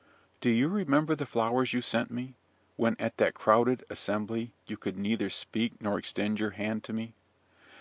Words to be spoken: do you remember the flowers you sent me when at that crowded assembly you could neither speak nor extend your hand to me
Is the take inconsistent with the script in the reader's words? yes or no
no